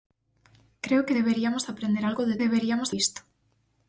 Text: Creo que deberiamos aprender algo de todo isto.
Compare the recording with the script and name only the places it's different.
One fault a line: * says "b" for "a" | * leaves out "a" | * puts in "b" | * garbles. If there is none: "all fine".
* says "deberiamos" for "todo"